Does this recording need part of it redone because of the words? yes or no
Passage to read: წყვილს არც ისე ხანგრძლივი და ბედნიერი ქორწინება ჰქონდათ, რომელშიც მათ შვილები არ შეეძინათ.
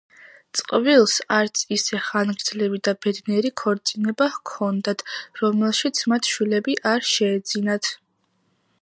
no